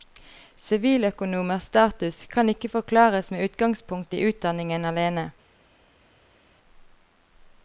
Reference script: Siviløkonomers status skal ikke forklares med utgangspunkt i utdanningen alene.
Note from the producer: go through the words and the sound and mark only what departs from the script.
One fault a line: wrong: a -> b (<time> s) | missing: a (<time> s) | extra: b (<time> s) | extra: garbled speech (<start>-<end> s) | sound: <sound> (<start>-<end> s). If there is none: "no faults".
wrong: skal -> kan (2.2 s)